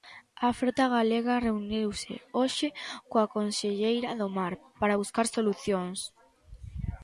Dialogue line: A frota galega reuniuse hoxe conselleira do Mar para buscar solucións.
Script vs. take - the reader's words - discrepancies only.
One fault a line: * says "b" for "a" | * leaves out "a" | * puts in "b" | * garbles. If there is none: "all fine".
* puts in "coa"